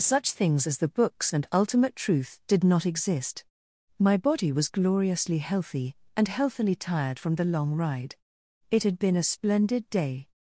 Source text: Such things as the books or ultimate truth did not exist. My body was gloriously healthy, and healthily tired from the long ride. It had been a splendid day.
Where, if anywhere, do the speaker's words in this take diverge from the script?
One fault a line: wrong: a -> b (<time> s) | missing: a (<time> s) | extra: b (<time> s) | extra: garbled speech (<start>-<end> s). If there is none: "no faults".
wrong: or -> and (1.3 s)